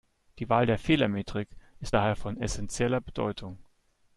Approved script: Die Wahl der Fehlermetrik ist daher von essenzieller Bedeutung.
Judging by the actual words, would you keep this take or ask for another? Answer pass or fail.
pass